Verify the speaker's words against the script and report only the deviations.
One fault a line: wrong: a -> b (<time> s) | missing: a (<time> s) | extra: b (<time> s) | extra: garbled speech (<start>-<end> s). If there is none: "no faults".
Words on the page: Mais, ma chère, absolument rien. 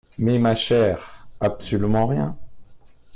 no faults